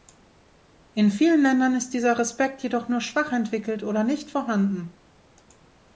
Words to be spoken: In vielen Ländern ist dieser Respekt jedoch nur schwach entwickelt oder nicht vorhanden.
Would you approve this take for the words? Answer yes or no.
yes